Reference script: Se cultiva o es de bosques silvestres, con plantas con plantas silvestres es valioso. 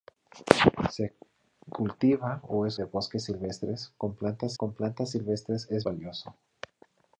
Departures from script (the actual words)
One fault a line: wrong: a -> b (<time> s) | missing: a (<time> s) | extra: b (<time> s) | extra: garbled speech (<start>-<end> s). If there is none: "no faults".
no faults